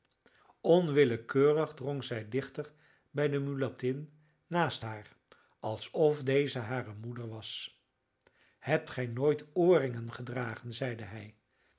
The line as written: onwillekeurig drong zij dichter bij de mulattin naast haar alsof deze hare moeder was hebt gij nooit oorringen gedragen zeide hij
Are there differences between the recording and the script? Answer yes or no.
no